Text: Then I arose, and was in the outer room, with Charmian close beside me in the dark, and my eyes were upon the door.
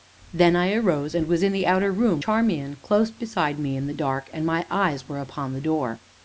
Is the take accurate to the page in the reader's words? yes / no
no